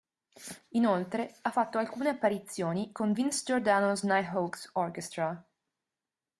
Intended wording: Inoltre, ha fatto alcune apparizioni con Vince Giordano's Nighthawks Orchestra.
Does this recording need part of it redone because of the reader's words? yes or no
no